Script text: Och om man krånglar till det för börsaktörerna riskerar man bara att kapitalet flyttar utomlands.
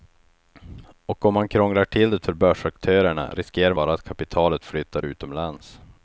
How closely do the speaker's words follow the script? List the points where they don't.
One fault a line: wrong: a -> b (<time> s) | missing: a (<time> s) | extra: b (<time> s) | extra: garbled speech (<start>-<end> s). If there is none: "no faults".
missing: man (3.7 s)